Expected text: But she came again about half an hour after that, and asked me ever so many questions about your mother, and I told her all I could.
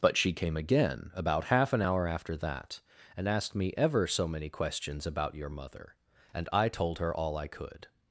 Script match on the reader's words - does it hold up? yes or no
yes